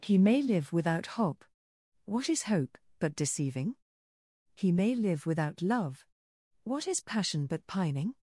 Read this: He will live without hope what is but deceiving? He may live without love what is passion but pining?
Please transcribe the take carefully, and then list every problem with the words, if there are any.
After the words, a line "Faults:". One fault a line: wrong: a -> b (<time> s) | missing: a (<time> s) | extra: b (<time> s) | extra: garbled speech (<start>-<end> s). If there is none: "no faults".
He may live without hope what is hope but deceiving? He may live without love what is passion but pining?
Faults:
wrong: will -> may (0.2 s)
extra: hope (2.4 s)